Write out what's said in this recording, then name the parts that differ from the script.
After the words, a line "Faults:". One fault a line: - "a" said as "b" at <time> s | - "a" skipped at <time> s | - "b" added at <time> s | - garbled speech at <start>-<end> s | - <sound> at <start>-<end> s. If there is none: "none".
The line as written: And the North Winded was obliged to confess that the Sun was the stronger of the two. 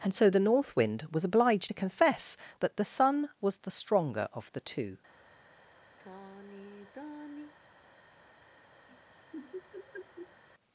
And so the North Wind was obliged to confess that the Sun was the stronger of the two.
Faults:
- "so" added at 0.1 s
- "Winded" said as "Wind" at 0.8 s
- sigh at 6.0-7.5 s
- laugh at 8.9-10.4 s